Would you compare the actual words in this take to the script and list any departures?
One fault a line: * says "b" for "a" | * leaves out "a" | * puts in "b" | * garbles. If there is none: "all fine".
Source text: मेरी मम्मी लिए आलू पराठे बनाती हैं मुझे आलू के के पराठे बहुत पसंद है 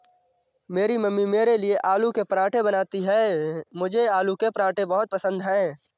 * puts in "मेरे"
* puts in "के"
* leaves out "के"